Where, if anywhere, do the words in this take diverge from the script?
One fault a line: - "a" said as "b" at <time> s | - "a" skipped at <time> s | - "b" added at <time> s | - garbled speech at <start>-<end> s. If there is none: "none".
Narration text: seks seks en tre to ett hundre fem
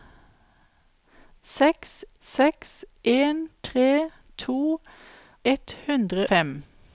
none